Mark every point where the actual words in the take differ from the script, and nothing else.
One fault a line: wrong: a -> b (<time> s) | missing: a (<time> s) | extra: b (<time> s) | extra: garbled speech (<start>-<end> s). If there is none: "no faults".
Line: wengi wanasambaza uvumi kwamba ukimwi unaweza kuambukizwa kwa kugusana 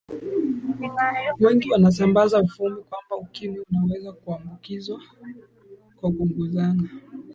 no faults